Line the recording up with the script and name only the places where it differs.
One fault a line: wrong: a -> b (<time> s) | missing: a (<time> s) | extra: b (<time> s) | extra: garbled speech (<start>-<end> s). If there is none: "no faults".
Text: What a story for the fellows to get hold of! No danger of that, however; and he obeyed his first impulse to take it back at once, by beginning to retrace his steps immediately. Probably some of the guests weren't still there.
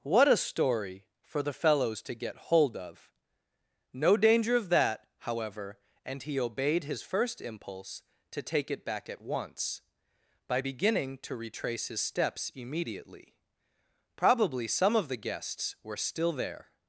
wrong: weren't -> were (15.8 s)